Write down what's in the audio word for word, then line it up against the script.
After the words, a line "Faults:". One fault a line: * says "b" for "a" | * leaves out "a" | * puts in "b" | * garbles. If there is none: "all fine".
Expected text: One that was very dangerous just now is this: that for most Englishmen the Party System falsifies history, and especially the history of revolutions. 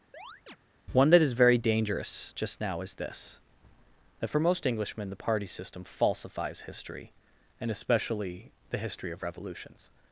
One that is very dangerous just now is this: that for most Englishmen the Party System falsifies history, and especially the history of revolutions.
Faults:
* says "is" for "was"